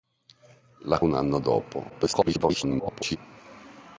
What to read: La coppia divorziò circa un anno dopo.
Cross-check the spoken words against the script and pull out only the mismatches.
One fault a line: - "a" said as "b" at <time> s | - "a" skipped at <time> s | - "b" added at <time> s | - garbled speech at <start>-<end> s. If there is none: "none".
- "coppia divorziò circa" skipped at 1.0 s
- garbled speech at 1.9-3.2 s